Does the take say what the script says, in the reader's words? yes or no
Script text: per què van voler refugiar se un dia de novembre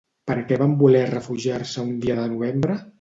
yes